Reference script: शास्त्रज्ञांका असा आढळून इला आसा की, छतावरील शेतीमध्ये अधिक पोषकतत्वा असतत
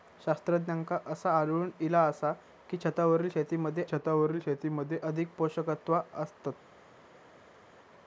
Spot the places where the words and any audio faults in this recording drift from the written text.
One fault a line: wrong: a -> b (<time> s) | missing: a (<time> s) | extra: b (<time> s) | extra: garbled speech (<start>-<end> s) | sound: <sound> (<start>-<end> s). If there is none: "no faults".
extra: छतावरील शेतीमध्ये (3.8 s)